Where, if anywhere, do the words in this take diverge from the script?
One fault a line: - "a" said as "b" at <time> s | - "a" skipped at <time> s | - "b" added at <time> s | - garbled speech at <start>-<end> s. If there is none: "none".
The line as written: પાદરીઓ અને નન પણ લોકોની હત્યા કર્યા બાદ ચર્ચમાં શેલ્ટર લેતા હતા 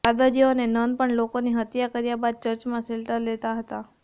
none